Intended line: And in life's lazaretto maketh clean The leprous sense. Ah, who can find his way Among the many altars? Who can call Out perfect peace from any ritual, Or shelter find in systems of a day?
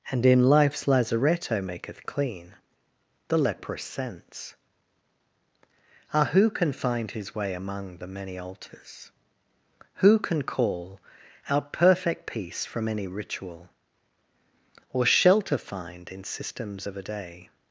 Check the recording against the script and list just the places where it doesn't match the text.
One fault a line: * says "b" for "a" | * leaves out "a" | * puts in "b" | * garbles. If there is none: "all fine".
all fine